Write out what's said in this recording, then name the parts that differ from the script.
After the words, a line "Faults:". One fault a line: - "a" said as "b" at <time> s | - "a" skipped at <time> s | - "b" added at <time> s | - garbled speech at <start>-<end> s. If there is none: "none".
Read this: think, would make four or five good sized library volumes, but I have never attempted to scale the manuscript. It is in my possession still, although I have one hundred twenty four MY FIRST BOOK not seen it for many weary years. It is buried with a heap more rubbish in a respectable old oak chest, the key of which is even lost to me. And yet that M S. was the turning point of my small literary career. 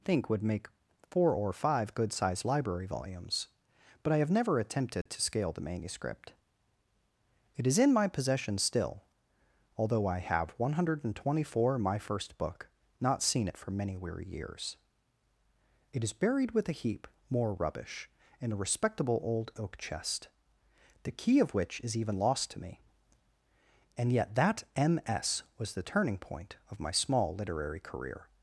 think, would make four or five good sized library volumes, but I have never attempted to scale the manuscript. It is in my possession still, although I have one hundred twenty four MY FIRST BOOK not seen it for many weary years. It is buried with a heap more rubbish in a respectable old oak chest, the key of which is even lost to me. And yet that M S. was the turning point of my small literary career.
Faults:
none